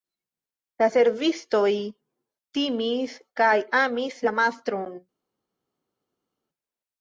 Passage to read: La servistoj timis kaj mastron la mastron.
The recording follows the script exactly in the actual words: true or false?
false